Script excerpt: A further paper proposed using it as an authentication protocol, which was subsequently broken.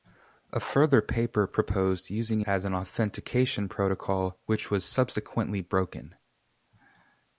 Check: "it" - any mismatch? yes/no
yes